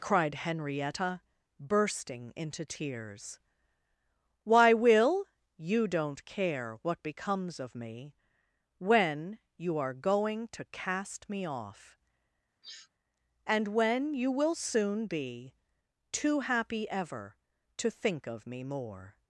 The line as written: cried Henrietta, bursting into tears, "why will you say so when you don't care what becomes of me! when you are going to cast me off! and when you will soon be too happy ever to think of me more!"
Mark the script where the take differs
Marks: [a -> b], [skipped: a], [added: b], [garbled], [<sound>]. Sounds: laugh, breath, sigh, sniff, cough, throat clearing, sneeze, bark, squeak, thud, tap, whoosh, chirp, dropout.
cried Henrietta, bursting into tears, "why will you [skipped: say so when you] don't care what becomes of me! when you are going to cast me off! [sniff] and when you will soon be too happy ever to think of me more!"